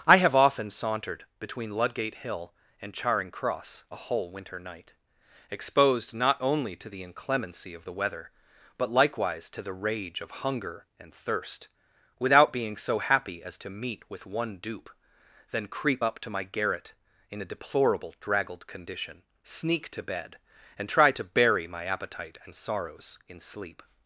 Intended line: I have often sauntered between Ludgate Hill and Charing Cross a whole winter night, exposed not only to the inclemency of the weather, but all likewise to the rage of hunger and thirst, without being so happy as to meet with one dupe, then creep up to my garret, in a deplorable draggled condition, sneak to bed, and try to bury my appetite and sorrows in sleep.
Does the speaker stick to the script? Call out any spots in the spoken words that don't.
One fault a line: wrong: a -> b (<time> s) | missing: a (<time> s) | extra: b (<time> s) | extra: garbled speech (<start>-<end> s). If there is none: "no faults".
missing: all (8.9 s)